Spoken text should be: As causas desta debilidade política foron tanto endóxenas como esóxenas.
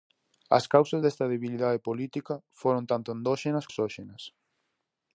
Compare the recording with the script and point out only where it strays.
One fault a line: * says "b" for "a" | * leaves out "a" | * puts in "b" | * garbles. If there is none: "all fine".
* leaves out "como"